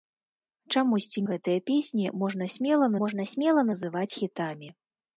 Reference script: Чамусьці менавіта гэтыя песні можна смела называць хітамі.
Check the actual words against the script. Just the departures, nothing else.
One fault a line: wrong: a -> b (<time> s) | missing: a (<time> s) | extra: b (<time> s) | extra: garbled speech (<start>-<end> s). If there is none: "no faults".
missing: менавіта (1.2 s)
extra: можна смела (3.1 s)